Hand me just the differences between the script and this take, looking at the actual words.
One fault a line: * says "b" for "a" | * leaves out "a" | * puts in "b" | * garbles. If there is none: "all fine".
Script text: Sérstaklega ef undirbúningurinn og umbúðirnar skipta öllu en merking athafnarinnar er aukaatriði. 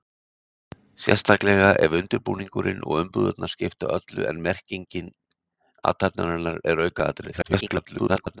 * garbles